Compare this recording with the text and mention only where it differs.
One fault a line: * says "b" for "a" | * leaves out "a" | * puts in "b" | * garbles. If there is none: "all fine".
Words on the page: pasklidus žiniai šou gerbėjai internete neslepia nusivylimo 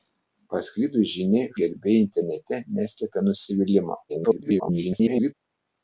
* leaves out "šou"
* garbles